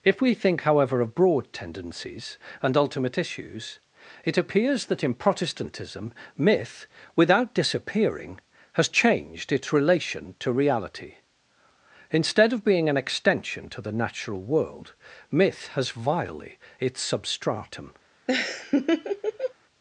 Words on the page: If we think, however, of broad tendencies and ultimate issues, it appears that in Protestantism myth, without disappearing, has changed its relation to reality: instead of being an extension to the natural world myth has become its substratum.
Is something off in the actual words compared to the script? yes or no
yes